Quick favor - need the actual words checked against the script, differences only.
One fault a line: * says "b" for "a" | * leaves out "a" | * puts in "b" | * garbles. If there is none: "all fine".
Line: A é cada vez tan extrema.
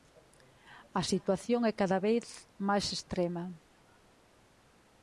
* puts in "situación"
* says "máis" for "tan"